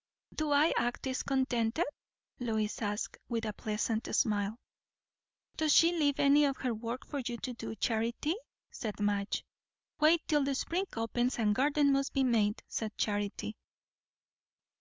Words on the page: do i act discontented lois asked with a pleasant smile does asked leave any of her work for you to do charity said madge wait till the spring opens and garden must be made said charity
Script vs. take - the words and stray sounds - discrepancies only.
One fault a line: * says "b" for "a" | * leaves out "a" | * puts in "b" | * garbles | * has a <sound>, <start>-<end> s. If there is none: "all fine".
* says "she" for "asked"